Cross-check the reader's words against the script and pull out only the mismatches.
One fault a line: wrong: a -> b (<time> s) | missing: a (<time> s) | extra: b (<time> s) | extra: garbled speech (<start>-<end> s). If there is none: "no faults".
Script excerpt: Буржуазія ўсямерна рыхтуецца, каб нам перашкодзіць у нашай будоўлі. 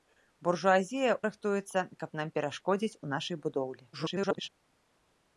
missing: ўсямерна (1.1 s)
extra: garbled speech (3.9-4.5 s)